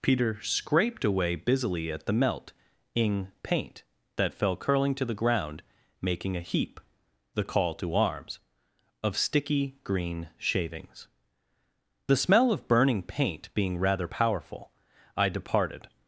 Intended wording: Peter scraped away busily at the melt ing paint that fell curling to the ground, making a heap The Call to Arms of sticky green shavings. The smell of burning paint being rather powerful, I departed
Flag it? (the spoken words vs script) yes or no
no